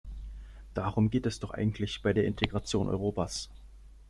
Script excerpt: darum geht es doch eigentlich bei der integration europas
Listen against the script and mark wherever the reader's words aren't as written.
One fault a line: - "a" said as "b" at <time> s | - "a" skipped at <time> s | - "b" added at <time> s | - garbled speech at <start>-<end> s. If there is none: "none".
none